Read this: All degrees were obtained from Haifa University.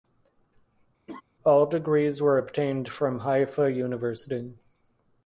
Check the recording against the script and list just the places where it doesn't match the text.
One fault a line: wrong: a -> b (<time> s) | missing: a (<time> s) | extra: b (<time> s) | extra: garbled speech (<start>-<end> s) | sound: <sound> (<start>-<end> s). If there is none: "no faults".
sound: laugh (1.1-1.2 s)